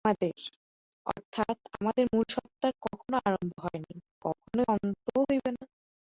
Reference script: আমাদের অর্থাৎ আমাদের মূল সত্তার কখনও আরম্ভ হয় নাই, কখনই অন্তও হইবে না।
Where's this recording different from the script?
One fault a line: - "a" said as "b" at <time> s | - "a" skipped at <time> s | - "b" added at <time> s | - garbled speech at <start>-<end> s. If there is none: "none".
none